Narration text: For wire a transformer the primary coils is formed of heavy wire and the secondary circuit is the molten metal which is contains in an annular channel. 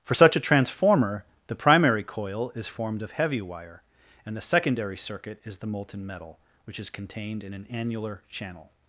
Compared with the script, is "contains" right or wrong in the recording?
wrong